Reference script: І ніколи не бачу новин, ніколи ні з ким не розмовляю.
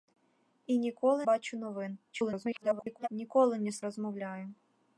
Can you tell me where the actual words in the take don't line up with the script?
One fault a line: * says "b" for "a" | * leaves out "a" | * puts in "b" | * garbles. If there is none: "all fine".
* leaves out "не"
* garbles
* leaves out "ким не"